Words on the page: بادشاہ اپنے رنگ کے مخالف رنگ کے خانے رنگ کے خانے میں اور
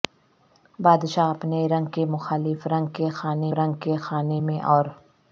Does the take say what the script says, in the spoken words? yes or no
yes